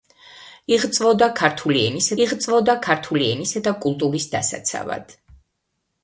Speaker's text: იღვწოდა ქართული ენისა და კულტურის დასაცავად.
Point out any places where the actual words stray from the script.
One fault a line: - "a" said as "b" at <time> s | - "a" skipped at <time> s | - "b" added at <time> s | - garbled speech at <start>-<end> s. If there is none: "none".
- "იღვწოდა ქართული ენისა" added at 2.3 s